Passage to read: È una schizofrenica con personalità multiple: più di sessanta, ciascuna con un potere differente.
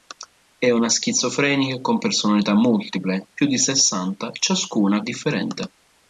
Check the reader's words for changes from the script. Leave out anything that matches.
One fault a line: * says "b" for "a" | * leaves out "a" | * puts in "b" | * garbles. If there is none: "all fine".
* leaves out "con un potere"